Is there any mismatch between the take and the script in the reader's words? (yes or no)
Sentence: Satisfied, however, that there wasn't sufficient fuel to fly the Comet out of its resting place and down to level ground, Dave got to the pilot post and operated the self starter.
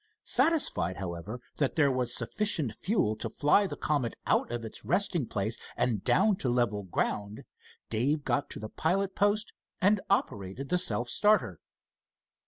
yes